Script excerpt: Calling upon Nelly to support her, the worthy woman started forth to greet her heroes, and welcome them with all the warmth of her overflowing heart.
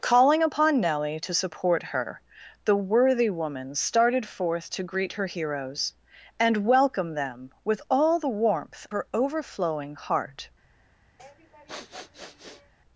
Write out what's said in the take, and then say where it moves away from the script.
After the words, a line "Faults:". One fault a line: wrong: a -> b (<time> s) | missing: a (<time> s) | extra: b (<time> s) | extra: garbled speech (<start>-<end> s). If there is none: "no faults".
Calling upon Nelly to support her, the worthy woman started forth to greet her heroes, and welcome them with all the warmth her overflowing heart.
Faults:
missing: of (8.9 s)